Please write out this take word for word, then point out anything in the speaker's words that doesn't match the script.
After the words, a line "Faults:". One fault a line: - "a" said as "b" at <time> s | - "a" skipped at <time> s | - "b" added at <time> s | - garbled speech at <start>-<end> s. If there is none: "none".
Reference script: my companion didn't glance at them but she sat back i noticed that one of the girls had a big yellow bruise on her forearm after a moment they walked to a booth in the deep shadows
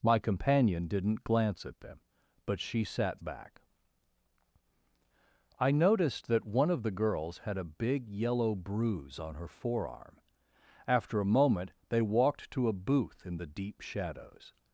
my companion didn't glance at them but she sat back i noticed that one of the girls had a big yellow bruise on her forearm after a moment they walked to a booth in the deep shadows
Faults:
none